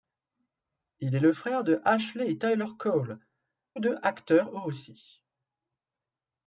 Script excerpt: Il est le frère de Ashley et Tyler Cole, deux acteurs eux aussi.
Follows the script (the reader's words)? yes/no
yes